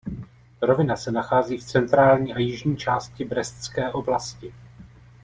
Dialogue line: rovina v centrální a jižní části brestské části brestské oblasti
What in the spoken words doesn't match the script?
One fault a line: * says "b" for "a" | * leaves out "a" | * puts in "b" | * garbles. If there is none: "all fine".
* puts in "se nachází"
* leaves out "části brestské"